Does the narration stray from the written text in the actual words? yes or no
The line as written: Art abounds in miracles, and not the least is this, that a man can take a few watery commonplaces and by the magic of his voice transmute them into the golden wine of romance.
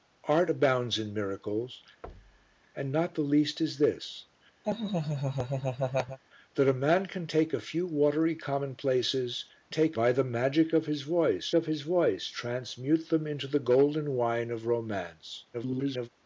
yes